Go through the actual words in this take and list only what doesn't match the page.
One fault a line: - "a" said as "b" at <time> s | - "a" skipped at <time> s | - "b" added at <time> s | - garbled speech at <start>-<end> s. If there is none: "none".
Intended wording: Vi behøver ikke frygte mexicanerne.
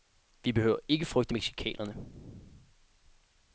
none